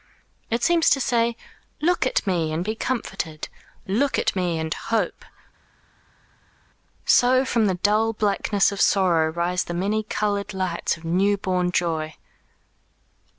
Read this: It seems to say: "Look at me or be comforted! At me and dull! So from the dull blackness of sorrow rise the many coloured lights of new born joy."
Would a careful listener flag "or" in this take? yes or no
yes